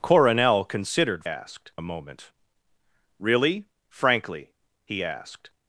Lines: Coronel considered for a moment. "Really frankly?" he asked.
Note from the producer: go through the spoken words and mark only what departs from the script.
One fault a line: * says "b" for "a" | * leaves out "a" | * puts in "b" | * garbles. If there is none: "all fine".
* says "asked" for "for"